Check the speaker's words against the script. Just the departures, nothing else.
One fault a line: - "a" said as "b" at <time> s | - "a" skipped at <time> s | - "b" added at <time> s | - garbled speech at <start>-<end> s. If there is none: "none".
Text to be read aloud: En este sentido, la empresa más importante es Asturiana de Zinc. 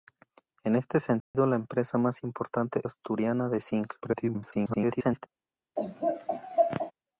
- "es" skipped at 2.8 s
- garbled speech at 4.0-5.3 s